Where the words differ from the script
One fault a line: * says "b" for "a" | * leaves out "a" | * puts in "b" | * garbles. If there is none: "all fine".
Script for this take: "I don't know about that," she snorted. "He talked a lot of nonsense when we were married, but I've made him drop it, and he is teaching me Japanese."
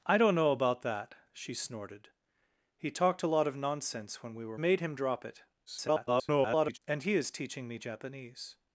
* leaves out "married but I've"
* garbles